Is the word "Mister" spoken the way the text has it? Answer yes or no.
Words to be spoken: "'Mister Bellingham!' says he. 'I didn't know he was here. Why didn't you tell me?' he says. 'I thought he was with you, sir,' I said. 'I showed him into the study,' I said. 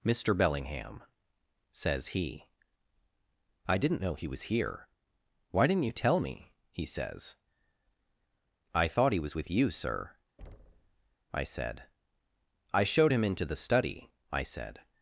yes